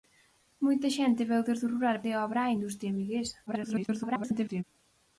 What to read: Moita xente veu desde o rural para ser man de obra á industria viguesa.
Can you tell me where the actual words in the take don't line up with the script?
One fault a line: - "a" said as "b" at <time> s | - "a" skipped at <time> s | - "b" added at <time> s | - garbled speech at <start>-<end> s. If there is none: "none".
- "para ser man" skipped at 2.0 s
- garbled speech at 3.5-4.6 s